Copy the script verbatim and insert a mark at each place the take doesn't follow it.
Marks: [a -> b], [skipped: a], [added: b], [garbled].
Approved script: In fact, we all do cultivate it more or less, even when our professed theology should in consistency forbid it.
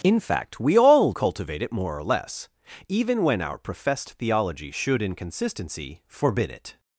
In fact, we all [skipped: do] cultivate it more or less, even when our professed theology should in consistency forbid it.